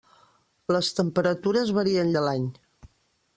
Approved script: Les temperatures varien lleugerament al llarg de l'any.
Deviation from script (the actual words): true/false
true